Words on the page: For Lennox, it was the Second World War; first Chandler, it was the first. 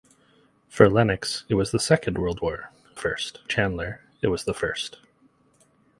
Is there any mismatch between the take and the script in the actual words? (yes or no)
no